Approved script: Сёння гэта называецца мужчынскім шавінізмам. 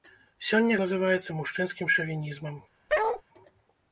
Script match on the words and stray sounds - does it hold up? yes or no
no